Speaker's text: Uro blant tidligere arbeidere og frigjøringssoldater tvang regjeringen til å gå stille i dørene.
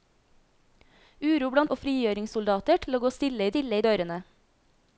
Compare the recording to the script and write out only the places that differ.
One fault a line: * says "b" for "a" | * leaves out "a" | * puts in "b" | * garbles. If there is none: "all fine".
* leaves out "tidligere arbeidere"
* leaves out "tvang regjeringen"
* puts in "stille"